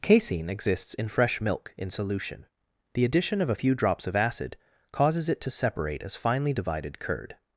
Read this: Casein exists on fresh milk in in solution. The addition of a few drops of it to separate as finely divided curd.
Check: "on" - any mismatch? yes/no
yes